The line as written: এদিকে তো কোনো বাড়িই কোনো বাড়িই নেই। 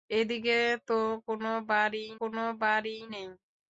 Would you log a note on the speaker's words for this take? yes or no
no